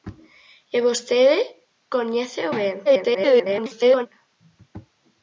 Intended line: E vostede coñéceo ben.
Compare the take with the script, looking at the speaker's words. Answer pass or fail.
fail